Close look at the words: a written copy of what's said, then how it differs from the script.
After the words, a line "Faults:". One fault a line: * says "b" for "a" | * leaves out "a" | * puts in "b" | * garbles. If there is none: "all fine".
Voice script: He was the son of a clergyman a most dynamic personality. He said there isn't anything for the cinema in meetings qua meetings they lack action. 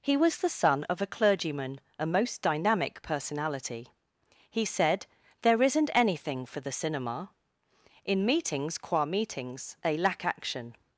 He was the son of a clergyman a most dynamic personality. He said there isn't anything for the cinema in meetings qua meetings they lack action.
Faults:
all fine